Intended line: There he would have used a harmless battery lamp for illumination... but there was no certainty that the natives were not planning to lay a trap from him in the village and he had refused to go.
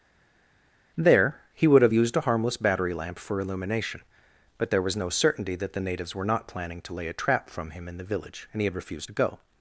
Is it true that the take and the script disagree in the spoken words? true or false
false